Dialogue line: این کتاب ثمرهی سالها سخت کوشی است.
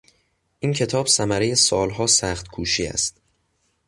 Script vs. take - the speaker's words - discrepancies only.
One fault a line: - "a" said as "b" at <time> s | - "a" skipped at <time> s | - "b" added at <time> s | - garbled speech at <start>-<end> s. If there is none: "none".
none